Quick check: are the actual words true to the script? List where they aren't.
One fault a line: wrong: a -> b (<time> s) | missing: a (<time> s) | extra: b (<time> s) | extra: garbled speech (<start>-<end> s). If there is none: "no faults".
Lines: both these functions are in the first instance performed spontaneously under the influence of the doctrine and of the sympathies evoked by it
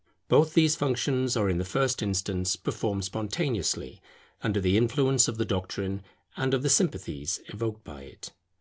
no faults